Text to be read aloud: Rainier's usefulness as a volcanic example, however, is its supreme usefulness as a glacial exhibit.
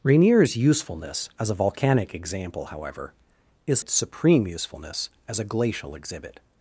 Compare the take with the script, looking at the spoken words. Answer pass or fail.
pass